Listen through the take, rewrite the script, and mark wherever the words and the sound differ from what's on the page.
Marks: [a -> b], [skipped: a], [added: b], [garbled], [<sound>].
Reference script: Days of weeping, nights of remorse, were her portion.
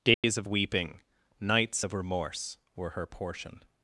Days [dropout] of weeping, nights of remorse, were her portion.